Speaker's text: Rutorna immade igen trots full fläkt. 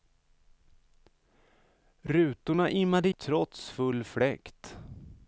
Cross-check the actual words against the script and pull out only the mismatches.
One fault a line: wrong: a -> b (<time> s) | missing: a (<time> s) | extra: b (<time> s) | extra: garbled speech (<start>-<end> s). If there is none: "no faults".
missing: igen (3.1 s)